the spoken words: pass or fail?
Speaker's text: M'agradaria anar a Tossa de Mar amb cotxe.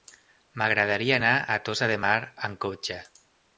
pass